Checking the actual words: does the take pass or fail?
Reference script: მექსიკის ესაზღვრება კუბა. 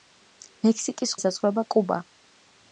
pass